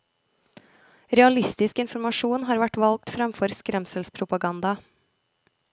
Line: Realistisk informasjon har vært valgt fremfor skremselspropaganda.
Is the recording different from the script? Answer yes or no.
no